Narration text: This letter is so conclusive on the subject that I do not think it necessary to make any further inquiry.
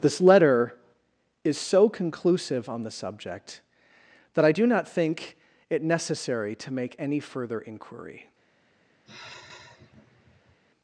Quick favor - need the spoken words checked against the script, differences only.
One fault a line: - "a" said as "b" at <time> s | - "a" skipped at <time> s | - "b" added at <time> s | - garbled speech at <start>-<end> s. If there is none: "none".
none